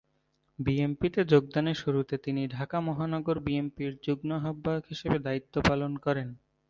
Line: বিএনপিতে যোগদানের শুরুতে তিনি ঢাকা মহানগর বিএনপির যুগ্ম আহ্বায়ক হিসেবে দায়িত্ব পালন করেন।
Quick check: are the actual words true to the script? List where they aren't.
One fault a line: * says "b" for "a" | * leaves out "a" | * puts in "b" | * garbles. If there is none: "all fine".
all fine